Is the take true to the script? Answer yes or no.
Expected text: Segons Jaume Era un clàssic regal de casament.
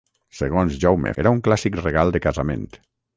yes